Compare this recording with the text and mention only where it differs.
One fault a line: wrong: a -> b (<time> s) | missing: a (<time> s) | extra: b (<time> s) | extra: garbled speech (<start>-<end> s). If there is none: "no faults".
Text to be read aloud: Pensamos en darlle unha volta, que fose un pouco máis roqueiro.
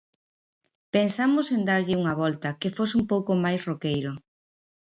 no faults